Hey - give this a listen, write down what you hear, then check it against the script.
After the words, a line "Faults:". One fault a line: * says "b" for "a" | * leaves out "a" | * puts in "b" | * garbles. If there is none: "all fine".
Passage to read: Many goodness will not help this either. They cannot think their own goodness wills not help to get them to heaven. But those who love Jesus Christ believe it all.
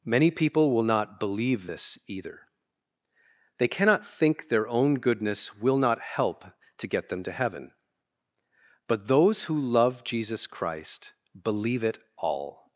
Many people will not believe this either. They cannot think their own goodness will not help to get them to heaven. But those who love Jesus Christ believe it all.
Faults:
* says "people" for "goodness"
* says "believe" for "help"
* says "will" for "wills"